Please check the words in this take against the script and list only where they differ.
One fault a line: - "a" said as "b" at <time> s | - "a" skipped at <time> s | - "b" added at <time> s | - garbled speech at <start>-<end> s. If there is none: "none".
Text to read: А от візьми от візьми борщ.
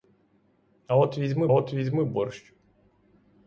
none